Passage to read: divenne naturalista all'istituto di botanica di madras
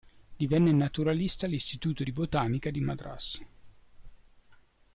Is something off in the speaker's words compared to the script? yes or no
no